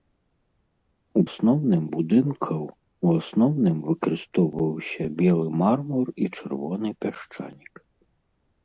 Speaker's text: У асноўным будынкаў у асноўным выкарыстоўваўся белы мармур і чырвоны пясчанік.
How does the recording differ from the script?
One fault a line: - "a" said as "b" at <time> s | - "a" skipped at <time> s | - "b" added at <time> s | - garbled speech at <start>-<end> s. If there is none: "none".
none